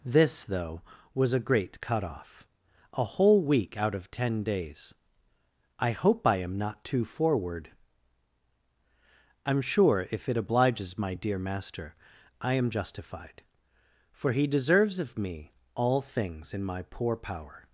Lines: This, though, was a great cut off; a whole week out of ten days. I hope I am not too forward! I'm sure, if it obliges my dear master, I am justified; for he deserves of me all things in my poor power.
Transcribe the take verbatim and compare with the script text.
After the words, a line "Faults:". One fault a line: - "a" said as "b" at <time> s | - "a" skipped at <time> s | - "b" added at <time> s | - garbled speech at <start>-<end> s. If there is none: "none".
This, though, was a great cut off; a whole week out of ten days. I hope I am not too forward! I'm sure, if it obliges my dear master, I am justified; for he deserves of me all things in my poor power.
Faults:
none